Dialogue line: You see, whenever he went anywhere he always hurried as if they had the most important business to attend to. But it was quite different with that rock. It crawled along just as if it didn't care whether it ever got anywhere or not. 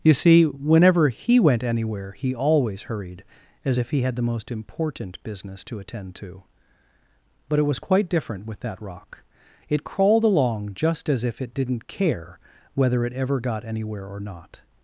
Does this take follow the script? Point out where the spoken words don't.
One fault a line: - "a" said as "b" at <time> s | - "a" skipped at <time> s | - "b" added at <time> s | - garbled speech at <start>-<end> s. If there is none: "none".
- "they" said as "he" at 3.9 s